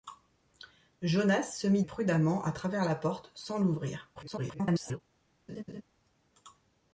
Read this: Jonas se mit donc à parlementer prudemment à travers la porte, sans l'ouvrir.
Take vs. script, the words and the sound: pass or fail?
fail